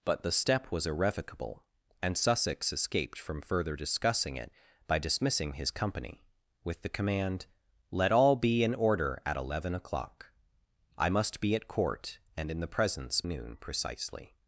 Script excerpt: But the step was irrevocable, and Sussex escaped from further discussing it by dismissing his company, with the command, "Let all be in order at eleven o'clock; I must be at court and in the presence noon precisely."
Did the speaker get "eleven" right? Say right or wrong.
right